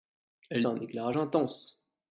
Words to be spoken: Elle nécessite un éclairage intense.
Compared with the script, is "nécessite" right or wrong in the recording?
wrong